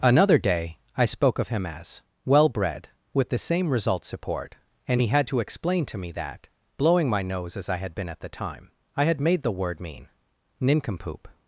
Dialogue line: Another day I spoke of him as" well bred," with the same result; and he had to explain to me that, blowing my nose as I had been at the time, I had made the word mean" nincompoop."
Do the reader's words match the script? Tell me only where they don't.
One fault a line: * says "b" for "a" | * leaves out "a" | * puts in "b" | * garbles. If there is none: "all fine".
* puts in "support"